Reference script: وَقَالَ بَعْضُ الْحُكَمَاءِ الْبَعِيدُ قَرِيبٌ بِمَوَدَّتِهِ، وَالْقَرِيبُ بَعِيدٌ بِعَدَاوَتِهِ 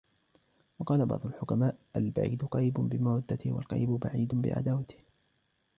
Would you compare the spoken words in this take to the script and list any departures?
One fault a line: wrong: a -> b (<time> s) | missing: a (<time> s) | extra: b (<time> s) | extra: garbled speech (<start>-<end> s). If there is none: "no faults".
no faults